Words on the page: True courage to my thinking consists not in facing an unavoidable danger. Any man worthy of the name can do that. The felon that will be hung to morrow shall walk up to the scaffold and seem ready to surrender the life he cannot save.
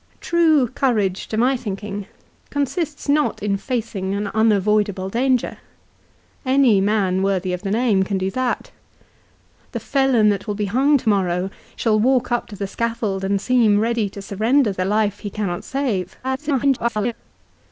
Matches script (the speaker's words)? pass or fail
fail